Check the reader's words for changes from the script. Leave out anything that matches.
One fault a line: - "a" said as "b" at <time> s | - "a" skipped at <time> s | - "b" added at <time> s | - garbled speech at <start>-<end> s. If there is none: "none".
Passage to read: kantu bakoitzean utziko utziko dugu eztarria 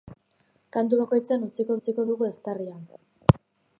none